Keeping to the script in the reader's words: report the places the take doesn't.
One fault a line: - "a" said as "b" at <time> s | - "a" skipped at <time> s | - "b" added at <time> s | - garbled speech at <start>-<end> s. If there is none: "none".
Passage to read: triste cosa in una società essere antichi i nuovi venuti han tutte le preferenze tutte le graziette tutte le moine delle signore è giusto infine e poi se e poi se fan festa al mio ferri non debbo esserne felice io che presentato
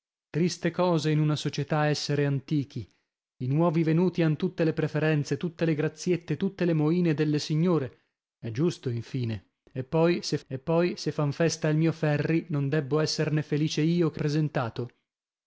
none